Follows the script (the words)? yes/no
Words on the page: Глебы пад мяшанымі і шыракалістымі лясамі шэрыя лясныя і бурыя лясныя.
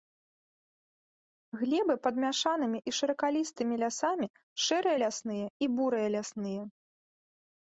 yes